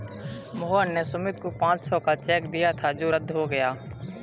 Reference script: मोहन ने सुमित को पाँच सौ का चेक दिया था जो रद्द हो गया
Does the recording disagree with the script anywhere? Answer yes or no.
no